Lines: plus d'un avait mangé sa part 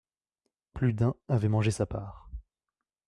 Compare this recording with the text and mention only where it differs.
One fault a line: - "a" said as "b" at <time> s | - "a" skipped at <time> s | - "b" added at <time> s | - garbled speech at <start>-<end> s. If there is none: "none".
none